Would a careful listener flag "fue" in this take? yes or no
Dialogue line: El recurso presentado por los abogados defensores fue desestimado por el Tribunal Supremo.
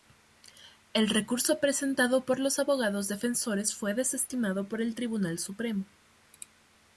no